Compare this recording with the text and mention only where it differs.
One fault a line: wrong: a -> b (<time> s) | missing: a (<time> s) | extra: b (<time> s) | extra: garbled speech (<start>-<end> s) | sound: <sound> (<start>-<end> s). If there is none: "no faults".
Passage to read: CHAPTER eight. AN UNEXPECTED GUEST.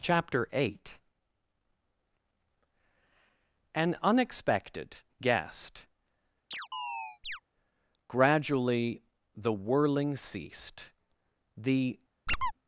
sound: chirp (6.5-7.4 s)
extra: Gradually the whirling ceased the (8.1 s)
sound: squeak (12.3-12.5 s)